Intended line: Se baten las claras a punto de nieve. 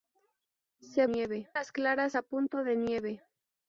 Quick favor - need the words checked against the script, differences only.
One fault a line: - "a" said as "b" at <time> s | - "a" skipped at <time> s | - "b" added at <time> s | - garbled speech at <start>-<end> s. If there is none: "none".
- "baten" said as "nieve" at 1.0 s